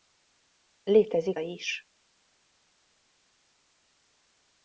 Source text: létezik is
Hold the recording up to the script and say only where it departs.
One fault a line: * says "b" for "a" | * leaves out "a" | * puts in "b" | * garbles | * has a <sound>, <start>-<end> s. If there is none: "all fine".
all fine